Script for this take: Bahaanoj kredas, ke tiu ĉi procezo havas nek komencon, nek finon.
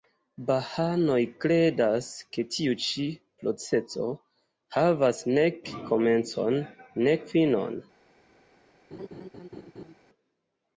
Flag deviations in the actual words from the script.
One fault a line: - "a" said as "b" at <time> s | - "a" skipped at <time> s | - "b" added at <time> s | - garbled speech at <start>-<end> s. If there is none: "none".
none